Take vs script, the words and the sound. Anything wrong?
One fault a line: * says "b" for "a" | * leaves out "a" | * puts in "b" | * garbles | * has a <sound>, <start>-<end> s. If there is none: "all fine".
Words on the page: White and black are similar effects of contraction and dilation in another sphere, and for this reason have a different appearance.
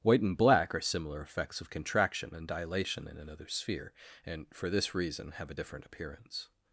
all fine